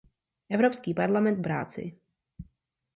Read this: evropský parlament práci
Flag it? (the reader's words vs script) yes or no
no